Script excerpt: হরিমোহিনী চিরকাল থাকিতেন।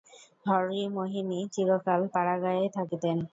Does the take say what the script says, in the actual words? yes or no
no